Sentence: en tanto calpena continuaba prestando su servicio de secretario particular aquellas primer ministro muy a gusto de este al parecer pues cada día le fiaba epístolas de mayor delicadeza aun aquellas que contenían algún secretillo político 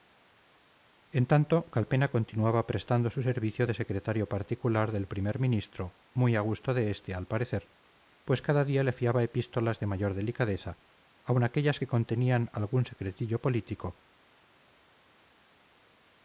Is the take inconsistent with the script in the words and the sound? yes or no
yes